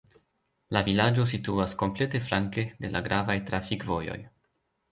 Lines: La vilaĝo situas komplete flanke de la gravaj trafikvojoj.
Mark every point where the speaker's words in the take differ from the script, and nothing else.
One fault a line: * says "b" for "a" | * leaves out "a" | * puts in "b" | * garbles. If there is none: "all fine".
all fine